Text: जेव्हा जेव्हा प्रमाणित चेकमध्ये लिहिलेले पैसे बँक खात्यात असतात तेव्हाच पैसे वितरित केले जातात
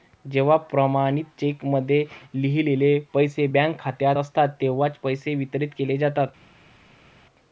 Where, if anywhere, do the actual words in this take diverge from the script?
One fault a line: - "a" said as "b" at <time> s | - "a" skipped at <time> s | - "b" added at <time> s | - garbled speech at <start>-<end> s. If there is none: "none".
- "जेव्हा" skipped at 0.6 s